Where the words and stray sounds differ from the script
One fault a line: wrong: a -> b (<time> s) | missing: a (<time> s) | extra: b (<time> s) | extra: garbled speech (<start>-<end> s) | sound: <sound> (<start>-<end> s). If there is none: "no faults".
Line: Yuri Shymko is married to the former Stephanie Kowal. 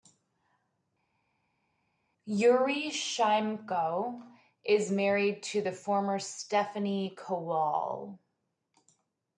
no faults